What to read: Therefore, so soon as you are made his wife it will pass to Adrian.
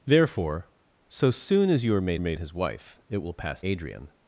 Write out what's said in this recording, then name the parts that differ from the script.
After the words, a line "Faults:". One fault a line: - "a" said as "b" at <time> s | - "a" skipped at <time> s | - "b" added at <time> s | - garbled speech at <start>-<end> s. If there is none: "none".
Therefore, so soon as you are made made his wife it will pass Adrian.
Faults:
- "made" added at 2.2 s
- "to" skipped at 3.6 s